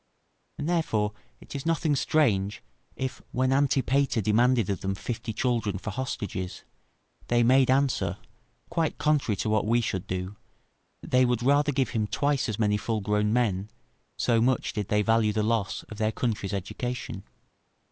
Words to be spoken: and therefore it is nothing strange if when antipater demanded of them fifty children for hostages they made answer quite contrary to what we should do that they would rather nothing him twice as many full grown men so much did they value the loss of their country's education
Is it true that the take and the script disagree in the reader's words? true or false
true